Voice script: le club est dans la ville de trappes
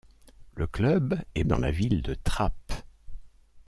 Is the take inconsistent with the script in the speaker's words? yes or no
no